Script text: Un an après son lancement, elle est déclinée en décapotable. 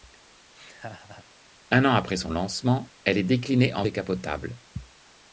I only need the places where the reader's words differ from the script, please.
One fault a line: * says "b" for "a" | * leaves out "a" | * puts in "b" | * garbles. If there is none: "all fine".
all fine